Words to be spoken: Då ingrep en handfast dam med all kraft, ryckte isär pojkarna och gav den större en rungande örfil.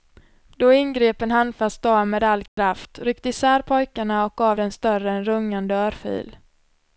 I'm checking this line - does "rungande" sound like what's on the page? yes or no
yes